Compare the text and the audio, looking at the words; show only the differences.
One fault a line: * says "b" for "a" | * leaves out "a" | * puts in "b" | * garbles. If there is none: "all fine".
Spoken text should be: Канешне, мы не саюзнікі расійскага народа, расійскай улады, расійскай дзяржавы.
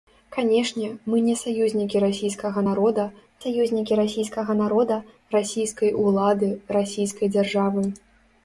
* puts in "саюзнікі расійскага народа"